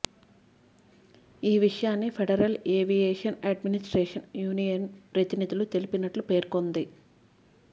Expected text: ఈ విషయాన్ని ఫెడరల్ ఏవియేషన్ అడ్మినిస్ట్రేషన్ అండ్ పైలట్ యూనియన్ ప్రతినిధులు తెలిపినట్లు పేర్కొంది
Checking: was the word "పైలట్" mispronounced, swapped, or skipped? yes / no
yes